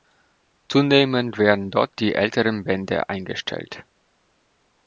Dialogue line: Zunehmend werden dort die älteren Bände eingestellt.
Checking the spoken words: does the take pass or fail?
pass